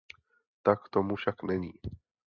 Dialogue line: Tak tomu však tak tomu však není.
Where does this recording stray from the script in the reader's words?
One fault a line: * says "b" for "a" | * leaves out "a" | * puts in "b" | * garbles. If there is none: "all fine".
* leaves out "tak tomu však"